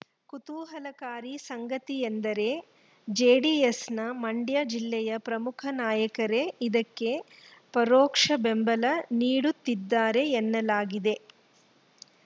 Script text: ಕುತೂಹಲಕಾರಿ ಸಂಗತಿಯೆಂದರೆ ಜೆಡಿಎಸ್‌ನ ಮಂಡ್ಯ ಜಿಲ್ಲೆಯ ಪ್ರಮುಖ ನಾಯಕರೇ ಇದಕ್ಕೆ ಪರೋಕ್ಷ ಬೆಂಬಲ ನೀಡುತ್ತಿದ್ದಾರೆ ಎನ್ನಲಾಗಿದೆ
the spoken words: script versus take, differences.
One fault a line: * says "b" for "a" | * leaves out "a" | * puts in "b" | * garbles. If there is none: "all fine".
all fine